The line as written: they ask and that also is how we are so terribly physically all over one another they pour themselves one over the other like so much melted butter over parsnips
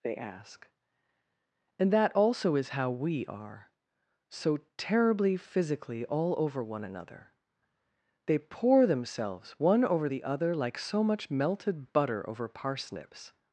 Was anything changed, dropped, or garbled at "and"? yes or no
no